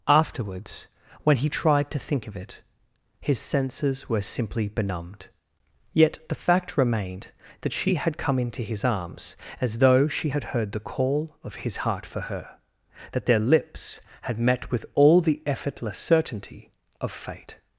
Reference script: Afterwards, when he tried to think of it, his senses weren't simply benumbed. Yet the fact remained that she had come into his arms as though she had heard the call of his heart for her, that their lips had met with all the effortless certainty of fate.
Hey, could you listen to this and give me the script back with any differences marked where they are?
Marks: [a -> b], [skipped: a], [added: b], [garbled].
Afterwards, when he tried to think of it, his senses [weren't -> were] simply benumbed. Yet the fact remained that she had come into his arms as though she had heard the call of his heart for her, that their lips had met with all the effortless certainty of fate.